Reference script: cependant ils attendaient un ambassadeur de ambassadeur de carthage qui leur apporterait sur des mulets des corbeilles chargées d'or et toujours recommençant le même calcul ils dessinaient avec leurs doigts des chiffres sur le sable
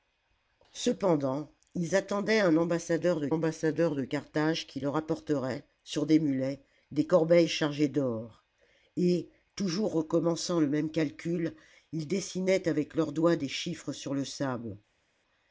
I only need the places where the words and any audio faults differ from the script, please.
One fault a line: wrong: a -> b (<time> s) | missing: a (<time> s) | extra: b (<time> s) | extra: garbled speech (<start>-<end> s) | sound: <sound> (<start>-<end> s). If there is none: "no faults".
no faults